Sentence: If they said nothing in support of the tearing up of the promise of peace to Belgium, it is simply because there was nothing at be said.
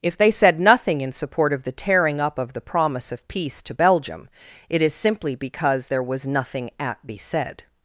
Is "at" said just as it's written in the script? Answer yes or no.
yes